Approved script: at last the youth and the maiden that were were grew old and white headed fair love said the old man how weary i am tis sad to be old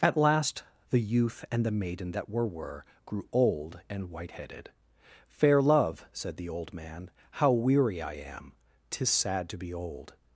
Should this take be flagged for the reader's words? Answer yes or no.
no